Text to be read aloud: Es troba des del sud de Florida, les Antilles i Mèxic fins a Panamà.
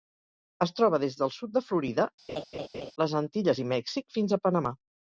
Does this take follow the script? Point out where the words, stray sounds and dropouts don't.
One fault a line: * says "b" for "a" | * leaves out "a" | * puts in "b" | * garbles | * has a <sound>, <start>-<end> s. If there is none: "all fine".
* has a laugh, 2.3-2.9 s